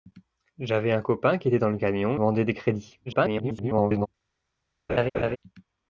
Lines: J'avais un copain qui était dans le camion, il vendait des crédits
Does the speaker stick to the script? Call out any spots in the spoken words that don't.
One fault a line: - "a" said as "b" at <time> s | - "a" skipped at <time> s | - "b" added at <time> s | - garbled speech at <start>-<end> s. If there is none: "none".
- "il" skipped at 2.2 s
- garbled speech at 3.1-4.1 s